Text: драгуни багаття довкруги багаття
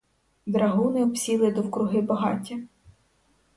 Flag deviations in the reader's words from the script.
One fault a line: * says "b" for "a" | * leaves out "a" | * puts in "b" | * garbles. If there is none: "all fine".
* says "обсіли" for "багаття"